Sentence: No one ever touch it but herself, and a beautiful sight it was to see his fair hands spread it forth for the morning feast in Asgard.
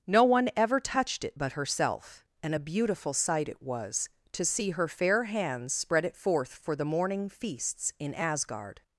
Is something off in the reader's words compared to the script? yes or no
yes